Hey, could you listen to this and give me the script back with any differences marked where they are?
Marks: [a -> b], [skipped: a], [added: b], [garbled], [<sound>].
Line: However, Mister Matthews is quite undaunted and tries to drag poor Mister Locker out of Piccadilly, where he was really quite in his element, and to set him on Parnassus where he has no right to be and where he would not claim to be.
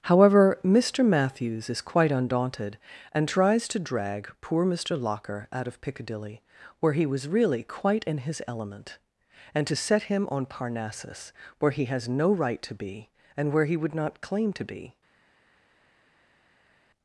However, Mister Matthews is quite undaunted and tries to drag poor Mister Locker out of Piccadilly, where he was really quite in his element, and to set him on Parnassus where he has no right to be and where he would not claim to be.